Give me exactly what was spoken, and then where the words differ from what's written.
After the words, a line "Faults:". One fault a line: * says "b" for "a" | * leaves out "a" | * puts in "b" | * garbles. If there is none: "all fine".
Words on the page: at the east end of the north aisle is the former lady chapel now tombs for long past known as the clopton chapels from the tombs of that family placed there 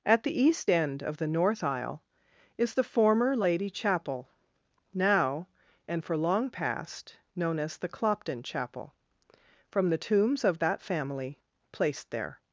at the east end of the north aisle is the former lady chapel now and for long past known as the clopton chapel from the tombs of that family placed there
Faults:
* says "and" for "tombs"
* says "chapel" for "chapels"